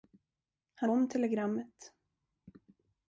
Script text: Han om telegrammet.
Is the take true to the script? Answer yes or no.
yes